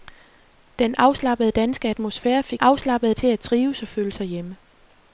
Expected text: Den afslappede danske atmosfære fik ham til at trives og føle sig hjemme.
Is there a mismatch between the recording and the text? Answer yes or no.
yes